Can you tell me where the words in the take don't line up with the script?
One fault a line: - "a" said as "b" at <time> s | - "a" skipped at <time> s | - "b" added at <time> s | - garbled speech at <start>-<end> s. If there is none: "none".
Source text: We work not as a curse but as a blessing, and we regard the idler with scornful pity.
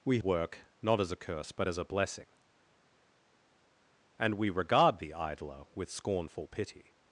none